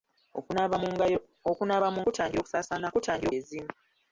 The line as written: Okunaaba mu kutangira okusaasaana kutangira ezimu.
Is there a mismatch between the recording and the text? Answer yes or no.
no